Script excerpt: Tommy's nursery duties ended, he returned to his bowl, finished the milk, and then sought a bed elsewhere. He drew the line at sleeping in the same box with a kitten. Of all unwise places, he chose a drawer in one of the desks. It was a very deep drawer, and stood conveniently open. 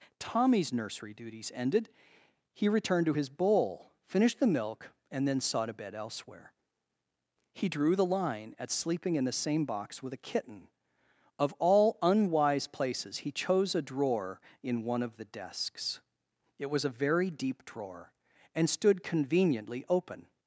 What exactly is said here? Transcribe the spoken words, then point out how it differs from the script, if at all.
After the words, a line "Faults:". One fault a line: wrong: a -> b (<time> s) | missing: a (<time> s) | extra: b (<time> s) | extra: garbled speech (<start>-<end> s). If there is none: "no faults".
Tommy's nursery duties ended, he returned to his bowl, finished the milk, and then sought a bed elsewhere. He drew the line at sleeping in the same box with a kitten. Of all unwise places, he chose a drawer in one of the desks. It was a very deep drawer, and stood conveniently open.
Faults:
no faults